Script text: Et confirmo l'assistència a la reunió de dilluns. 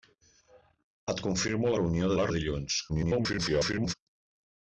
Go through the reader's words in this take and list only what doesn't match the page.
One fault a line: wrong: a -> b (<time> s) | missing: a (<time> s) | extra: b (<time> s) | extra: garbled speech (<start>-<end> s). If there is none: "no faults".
wrong: l'assistència -> reunió (1.8 s)
missing: reunió (2.3 s)
extra: garbled speech (2.9-3.9 s)